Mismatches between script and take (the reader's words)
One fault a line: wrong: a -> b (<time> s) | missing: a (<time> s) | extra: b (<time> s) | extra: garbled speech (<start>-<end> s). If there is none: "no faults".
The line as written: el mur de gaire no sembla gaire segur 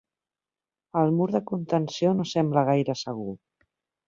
wrong: gaire -> contenció (1.5 s)